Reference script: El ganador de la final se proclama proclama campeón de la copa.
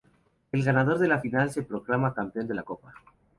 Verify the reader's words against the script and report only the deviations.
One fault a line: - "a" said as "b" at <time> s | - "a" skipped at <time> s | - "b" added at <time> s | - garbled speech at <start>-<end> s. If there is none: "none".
- "proclama" skipped at 2.1 s